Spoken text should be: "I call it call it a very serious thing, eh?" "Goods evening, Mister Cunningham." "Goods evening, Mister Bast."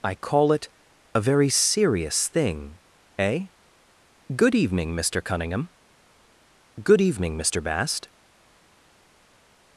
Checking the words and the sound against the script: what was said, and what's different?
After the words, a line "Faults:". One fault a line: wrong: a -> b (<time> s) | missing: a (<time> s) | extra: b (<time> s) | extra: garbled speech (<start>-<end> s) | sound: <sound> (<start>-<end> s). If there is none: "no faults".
"I call it a very serious thing, eh?" "Good evening, Mister Cunningham." "Good evening, Mister Bast."
Faults:
missing: call it (0.7 s)
wrong: Goods -> Good (4.3 s)
wrong: Goods -> Good (6.8 s)